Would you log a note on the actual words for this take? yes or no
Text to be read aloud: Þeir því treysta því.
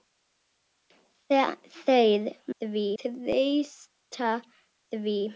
no